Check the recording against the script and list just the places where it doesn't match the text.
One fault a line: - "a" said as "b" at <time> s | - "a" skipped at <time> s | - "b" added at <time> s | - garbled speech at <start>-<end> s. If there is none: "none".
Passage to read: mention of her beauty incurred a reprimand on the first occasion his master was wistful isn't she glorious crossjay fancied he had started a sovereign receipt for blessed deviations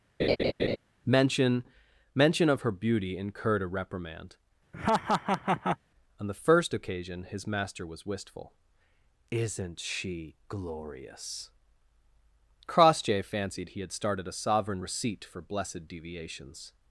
- "mention" added at 2.1 s